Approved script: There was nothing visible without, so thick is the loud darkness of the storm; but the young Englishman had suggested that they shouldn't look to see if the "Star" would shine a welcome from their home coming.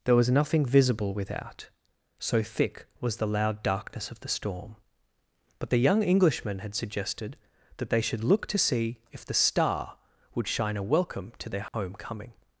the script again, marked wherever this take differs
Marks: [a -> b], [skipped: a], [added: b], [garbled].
There was nothing visible without, so thick [is -> was] the loud darkness of the storm; but the young Englishman had suggested that they [shouldn't -> should] look to see if the "Star" would shine a welcome [from -> to] their home coming.